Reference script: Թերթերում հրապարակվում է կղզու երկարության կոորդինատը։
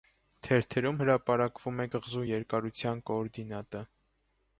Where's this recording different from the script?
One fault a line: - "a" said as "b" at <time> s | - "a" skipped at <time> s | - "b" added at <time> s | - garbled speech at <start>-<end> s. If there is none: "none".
none